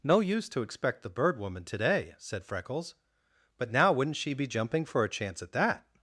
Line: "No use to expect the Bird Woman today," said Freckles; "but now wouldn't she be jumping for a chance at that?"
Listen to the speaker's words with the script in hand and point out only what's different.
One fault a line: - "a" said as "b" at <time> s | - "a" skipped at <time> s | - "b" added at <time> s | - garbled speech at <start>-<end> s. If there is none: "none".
none